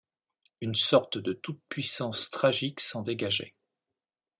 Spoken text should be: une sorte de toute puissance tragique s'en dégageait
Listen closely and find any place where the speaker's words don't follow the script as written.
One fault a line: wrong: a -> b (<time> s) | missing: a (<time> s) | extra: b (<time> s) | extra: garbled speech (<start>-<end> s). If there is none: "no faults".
no faults